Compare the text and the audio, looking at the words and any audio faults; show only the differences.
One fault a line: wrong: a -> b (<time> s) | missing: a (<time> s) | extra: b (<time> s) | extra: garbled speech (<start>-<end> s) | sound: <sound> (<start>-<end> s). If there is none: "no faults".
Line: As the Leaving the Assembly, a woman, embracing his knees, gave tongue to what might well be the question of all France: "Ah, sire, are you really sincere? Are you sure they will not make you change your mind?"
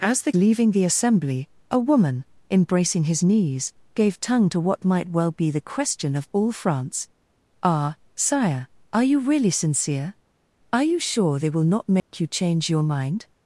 sound: dropout (12.0-12.1 s)